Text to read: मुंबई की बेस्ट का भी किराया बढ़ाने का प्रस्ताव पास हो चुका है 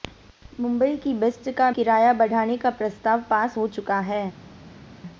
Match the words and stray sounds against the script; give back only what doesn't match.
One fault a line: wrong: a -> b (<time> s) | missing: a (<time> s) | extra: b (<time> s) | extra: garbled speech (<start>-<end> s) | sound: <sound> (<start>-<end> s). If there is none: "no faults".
missing: भी (1.7 s)